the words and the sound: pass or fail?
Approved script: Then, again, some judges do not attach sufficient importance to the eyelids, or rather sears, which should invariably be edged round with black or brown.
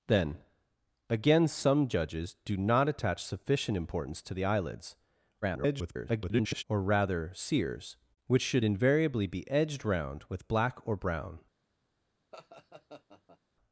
fail